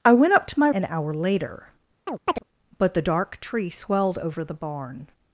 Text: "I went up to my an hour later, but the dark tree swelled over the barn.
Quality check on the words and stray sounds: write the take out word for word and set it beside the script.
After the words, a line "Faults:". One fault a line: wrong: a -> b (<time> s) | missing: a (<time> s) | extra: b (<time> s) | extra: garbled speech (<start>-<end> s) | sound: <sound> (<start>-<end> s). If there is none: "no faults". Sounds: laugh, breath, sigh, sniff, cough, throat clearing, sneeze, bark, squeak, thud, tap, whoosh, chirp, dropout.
"I went up to my an hour later, but the dark tree swelled over the barn.
Faults:
sound: chirp (2.1-2.4 s)